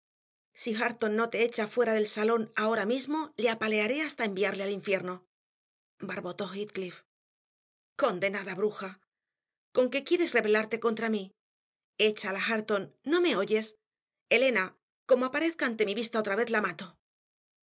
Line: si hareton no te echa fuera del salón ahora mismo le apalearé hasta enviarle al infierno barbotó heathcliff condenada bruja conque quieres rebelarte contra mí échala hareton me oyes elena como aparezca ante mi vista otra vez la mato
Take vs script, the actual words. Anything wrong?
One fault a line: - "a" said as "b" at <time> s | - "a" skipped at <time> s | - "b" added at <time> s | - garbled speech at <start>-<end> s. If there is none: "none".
- "no" added at 13.1 s